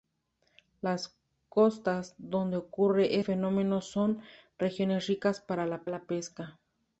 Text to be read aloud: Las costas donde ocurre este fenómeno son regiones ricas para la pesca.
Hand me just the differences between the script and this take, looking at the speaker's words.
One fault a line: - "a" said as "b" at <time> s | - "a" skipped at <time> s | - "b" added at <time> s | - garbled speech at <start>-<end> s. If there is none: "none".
- "este" skipped at 3.2 s
- "la" added at 5.9 s